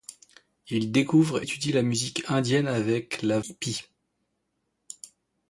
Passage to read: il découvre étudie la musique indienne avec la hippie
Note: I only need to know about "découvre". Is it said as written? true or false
true